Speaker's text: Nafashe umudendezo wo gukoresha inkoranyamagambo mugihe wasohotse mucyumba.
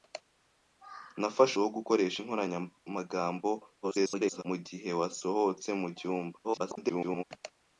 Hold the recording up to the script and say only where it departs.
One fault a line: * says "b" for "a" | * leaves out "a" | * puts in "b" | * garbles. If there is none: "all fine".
* leaves out "umudendezo"
* garbles
* garbles